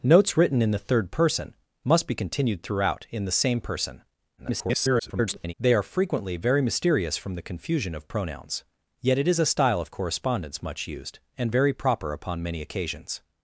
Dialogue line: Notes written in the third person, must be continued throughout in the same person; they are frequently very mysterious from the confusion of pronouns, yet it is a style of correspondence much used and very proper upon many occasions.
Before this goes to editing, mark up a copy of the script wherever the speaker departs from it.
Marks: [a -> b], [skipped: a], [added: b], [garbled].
Notes written in the third person, must be continued throughout in the same person; [garbled] they are frequently very mysterious from the confusion of pronouns, yet it is a style of correspondence much used and very proper upon many occasions.